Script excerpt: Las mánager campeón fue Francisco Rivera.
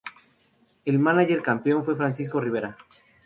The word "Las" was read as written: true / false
false